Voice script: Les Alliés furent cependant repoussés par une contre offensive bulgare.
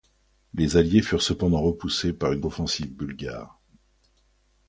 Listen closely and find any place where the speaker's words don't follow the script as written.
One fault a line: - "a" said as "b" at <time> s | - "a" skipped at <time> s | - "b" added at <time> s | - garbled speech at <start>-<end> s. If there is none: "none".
- "contre" skipped at 2.4 s